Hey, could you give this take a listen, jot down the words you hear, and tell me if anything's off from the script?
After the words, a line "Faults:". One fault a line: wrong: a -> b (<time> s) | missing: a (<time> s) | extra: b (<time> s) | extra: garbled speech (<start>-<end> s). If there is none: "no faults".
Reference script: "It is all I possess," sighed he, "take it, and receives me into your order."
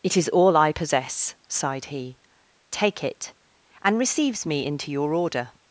"It is all I possess," sighed he, "take it, and receives me into your order."
Faults:
no faults